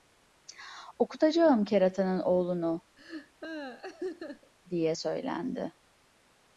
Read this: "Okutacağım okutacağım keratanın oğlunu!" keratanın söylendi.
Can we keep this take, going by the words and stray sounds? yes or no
no